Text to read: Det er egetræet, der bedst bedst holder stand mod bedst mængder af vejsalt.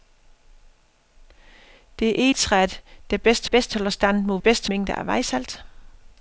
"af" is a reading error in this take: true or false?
false